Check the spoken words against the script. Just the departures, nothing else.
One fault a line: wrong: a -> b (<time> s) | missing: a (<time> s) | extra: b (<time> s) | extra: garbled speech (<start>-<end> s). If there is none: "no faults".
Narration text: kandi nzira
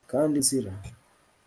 no faults